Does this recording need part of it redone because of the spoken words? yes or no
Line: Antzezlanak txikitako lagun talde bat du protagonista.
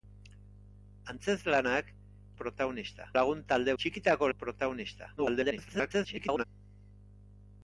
yes